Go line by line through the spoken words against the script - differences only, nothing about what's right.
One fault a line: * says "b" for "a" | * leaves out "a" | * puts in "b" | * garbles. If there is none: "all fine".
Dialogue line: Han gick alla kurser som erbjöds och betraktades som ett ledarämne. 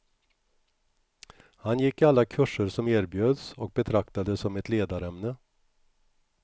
all fine